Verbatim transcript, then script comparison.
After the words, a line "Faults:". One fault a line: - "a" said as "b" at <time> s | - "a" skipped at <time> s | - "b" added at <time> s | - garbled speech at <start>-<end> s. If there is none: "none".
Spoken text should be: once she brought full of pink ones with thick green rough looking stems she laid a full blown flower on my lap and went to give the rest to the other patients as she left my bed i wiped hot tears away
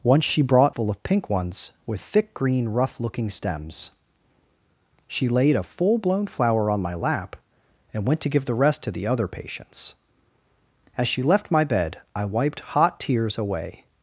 once she brought full of pink ones with thick green rough looking stems she laid a full blown flower on my lap and went to give the rest to the other patients as she left my bed i wiped hot tears away
Faults:
none